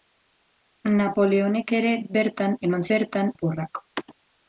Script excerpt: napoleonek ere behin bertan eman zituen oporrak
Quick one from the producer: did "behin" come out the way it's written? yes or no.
no